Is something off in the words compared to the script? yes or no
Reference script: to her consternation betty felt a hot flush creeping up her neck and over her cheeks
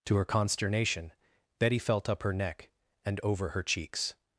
yes